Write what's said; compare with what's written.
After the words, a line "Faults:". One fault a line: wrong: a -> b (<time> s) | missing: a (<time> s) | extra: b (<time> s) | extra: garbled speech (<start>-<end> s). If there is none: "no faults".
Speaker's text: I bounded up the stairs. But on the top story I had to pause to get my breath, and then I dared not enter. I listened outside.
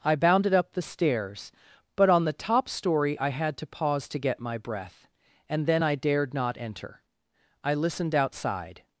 I bounded up the stairs. But on the top story I had to pause to get my breath, and then I dared not enter. I listened outside.
Faults:
no faults